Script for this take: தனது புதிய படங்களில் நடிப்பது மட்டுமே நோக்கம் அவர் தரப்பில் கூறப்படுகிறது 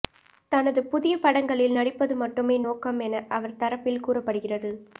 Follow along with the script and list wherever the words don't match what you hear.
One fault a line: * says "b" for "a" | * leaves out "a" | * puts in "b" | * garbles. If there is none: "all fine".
* puts in "என"